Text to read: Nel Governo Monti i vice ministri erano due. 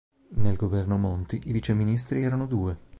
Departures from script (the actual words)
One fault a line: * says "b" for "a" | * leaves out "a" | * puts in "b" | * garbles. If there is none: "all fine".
all fine